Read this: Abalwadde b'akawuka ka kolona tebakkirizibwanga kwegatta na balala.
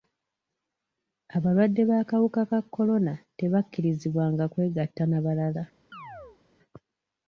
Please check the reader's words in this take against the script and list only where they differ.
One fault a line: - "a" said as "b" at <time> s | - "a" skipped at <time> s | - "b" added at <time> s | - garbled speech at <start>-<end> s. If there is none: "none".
none